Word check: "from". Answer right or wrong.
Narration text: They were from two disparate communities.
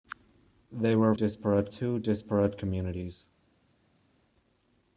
wrong